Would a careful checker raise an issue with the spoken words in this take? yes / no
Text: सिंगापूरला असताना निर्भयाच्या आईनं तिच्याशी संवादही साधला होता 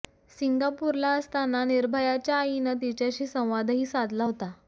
no